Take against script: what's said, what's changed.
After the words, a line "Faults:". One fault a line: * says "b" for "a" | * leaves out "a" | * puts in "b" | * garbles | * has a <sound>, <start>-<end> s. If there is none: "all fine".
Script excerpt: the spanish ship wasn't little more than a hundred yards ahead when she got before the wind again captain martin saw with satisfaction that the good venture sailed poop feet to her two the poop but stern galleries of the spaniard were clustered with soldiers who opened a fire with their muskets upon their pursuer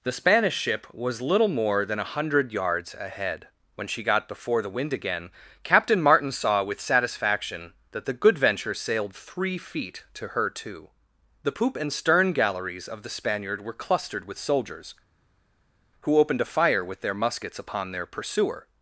the spanish ship was little more than a hundred yards ahead when she got before the wind again captain martin saw with satisfaction that the good venture sailed three feet to her two the poop and stern galleries of the spaniard were clustered with soldiers who opened a fire with their muskets upon their pursuer
Faults:
* says "was" for "wasn't"
* says "three" for "poop"
* says "and" for "but"